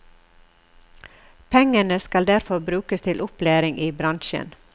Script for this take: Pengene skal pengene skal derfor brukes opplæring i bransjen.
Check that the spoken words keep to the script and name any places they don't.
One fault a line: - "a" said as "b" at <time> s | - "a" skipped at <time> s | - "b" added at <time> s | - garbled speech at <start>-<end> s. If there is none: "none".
- "pengene skal" skipped at 2.3 s
- "til" added at 3.0 s